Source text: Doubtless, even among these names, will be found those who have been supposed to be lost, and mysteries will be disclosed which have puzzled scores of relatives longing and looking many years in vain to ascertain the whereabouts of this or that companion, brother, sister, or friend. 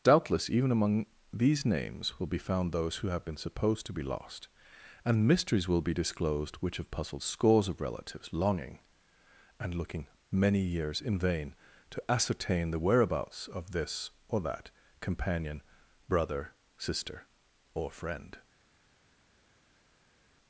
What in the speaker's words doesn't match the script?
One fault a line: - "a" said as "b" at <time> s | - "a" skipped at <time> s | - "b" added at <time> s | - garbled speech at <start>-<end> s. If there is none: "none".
none